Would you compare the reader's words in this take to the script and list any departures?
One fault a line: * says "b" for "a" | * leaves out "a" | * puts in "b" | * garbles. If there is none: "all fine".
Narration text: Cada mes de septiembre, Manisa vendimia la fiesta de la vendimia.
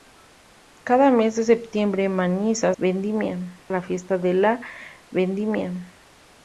all fine